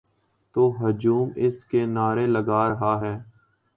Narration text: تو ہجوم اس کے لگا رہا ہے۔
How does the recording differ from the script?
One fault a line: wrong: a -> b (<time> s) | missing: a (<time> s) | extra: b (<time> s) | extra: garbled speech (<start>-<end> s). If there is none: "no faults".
extra: نعرے (1.9 s)